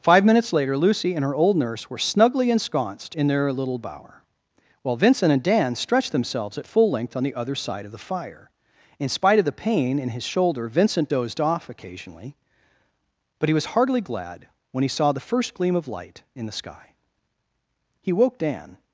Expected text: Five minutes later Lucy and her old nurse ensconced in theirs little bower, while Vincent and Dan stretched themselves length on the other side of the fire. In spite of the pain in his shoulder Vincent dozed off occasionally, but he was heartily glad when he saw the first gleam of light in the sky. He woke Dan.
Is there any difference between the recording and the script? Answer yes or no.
yes